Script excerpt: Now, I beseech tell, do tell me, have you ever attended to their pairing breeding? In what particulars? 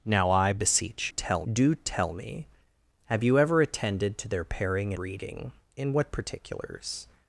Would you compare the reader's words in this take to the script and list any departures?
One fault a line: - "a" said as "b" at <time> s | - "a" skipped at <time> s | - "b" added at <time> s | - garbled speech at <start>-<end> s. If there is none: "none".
none